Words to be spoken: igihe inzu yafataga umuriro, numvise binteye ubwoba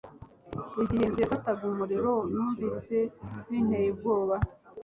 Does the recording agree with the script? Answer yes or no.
yes